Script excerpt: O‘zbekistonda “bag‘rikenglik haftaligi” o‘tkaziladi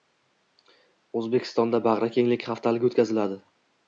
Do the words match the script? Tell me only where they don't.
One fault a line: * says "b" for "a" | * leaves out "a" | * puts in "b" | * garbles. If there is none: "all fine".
all fine